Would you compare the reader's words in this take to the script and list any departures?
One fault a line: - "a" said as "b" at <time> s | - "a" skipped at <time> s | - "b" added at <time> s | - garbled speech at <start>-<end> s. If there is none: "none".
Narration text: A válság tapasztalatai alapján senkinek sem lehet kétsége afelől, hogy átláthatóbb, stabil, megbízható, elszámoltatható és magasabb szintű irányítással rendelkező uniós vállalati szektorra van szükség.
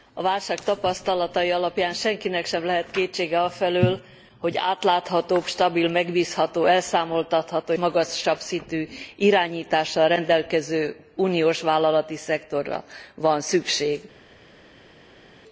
- "és" skipped at 7.7 s